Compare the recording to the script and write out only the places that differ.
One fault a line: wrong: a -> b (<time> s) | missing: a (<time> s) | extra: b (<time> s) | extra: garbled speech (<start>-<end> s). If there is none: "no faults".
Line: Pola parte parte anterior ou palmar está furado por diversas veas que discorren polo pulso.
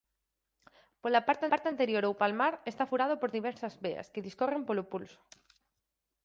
no faults